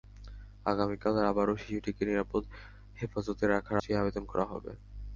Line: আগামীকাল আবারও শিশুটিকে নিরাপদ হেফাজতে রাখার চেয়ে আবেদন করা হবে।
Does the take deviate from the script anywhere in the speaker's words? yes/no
no